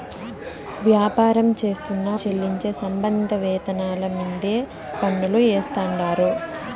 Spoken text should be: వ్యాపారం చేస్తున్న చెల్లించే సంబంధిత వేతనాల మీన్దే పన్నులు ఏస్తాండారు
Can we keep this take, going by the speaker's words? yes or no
yes